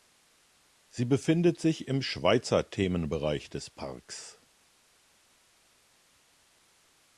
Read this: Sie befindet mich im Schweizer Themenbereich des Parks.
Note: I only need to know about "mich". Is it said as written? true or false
false